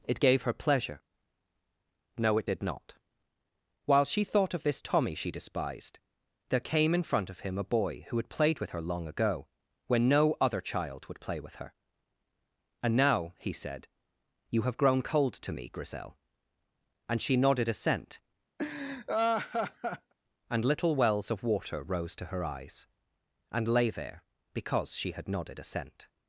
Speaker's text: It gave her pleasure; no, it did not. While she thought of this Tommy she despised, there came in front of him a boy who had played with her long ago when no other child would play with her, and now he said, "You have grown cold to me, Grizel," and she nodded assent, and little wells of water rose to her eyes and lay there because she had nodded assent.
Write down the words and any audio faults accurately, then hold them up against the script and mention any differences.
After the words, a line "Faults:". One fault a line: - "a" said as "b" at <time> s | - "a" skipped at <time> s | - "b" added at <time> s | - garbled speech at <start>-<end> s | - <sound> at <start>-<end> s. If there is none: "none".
It gave her pleasure; no, it did not. While she thought of this Tommy she despised, there came in front of him a boy who had played with her long ago when no other child would play with her, and now he said, "You have grown cold to me, Grizel," and she nodded assent, and little wells of water rose to her eyes and lay there because she had nodded assent.
Faults:
- laugh at 18.6-20.1 s